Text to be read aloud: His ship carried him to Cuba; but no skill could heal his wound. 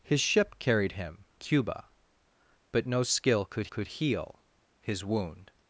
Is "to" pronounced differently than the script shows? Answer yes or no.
yes